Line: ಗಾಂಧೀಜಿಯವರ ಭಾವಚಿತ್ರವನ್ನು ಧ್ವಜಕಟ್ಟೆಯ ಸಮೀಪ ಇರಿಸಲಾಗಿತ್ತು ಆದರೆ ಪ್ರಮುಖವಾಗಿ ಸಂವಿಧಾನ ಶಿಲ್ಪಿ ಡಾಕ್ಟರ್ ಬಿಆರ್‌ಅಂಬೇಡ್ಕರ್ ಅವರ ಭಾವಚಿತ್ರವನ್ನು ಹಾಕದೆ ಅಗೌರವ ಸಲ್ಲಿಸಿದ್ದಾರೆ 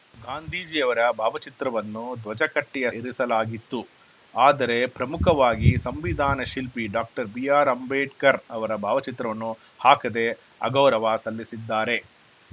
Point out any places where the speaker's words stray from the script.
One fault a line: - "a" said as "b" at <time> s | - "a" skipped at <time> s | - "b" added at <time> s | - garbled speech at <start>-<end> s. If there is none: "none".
- "ಸಮೀಪ" skipped at 2.9 s